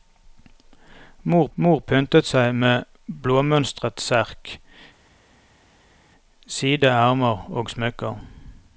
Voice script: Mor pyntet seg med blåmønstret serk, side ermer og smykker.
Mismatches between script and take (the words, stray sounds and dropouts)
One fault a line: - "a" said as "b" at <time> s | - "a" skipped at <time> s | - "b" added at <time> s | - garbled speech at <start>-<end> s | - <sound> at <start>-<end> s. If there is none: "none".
- "mor" added at 1.6 s